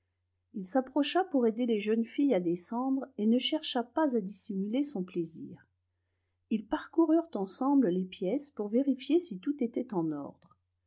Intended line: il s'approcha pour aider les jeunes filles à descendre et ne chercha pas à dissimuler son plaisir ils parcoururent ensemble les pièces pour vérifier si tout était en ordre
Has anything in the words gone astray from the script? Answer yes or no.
no